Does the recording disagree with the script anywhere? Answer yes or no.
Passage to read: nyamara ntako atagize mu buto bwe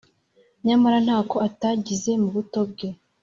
no